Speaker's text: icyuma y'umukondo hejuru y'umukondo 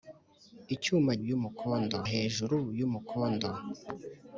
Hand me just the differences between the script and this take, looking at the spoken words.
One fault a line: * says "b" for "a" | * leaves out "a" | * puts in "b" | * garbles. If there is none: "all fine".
all fine